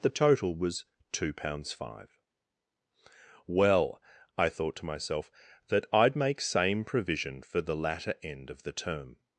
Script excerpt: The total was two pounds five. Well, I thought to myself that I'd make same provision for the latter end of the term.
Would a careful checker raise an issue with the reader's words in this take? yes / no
no